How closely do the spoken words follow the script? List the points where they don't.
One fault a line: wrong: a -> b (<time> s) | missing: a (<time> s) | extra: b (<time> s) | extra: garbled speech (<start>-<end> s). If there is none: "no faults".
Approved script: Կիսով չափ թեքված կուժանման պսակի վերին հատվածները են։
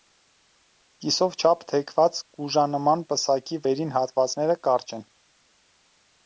extra: կարճ (4.7 s)